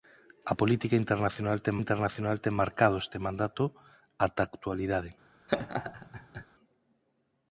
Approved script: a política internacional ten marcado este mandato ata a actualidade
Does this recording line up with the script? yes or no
no